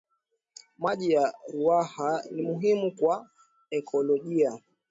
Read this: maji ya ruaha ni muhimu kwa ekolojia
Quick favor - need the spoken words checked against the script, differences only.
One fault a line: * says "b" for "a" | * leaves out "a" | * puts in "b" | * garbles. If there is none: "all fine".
all fine